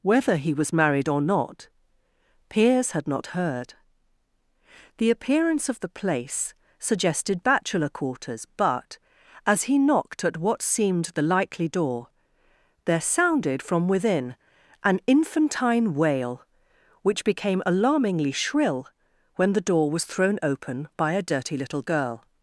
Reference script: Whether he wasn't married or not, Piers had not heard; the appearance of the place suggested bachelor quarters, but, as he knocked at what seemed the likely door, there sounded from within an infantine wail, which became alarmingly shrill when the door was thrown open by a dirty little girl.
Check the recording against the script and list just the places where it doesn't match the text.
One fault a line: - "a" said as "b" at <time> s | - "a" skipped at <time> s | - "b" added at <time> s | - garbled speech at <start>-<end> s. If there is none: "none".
- "wasn't" said as "was" at 0.5 s